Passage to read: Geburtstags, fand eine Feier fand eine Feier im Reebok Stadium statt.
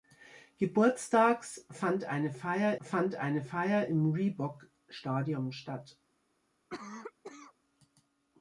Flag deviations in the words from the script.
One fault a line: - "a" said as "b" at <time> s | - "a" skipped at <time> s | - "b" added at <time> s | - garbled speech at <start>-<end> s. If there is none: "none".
none